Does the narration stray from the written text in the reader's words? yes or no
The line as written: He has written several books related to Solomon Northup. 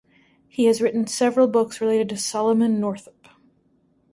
no